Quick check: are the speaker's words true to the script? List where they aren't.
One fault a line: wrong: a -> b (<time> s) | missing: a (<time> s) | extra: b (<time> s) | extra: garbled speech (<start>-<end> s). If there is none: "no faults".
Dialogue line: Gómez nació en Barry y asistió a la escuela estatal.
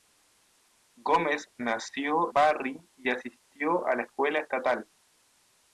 missing: en (2.3 s)